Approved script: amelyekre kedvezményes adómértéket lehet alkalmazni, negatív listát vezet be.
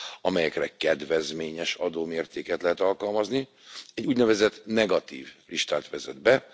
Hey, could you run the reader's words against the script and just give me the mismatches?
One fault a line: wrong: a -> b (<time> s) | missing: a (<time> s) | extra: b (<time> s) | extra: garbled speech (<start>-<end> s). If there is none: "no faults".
extra: egy úgynevezett (3.9 s)